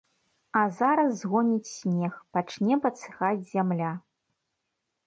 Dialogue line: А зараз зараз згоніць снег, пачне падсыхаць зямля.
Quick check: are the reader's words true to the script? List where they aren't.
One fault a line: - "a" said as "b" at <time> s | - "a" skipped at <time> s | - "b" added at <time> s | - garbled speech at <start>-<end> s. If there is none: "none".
- "зараз" skipped at 1.1 s